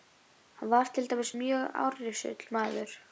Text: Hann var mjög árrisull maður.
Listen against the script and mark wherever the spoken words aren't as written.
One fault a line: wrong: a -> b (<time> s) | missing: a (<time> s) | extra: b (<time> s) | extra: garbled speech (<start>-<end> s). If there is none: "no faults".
extra: til dæmis (0.9 s)